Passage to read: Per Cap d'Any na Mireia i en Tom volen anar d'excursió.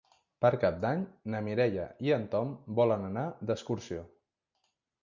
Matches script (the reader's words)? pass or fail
pass